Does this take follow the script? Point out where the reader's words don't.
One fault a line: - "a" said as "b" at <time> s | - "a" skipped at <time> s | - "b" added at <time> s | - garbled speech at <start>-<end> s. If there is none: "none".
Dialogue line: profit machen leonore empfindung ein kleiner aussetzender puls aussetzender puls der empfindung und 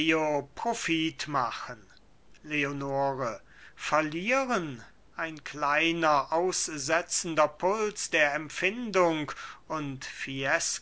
- "empfindung" said as "verlieren" at 3.7 s
- "aussetzender puls" skipped at 8.1 s